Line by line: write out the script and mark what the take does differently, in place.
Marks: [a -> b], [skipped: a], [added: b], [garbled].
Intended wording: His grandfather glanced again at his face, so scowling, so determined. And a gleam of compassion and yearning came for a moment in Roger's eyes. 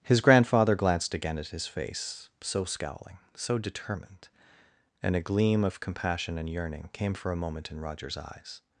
His grandfather glanced again at his face, so scowling, so determined. And a gleam of compassion and yearning came for a moment in Roger's eyes.